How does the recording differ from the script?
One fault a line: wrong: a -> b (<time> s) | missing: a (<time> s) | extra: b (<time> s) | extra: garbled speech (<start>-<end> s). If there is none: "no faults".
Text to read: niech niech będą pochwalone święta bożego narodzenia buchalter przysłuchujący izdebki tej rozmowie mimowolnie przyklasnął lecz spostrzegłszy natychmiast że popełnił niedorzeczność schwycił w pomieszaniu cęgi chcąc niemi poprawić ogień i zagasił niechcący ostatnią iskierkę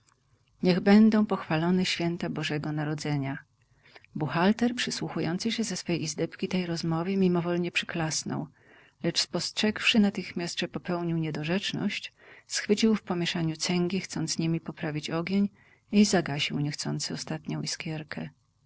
missing: niech (0.8 s)
extra: się ze swej (5.5 s)